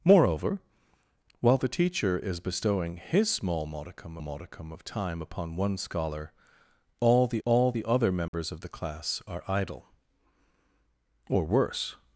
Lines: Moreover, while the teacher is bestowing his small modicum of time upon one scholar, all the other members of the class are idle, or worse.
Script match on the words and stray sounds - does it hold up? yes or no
no